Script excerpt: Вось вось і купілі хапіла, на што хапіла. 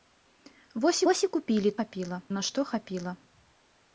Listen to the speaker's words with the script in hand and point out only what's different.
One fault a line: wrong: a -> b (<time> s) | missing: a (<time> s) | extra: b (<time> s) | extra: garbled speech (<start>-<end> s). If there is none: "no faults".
no faults